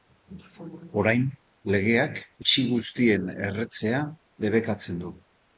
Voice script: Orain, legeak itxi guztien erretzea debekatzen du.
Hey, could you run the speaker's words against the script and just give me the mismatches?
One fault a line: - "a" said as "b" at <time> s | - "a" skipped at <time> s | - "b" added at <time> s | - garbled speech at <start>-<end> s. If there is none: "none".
none